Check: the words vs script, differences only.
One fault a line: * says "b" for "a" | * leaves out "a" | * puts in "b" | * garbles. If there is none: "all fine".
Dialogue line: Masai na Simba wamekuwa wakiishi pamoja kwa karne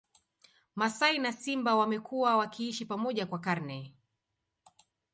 all fine